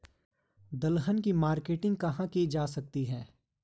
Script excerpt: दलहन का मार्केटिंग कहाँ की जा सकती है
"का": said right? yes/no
no